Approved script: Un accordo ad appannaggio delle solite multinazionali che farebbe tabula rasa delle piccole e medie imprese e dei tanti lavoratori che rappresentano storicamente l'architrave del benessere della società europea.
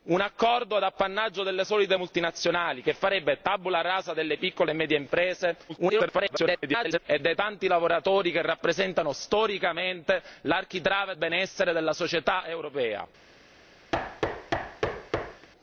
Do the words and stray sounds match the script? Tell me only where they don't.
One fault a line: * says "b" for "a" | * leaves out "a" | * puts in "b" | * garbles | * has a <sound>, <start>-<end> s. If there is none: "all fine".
* garbles
* leaves out "del"
* has a thud, 13.9-15.5 s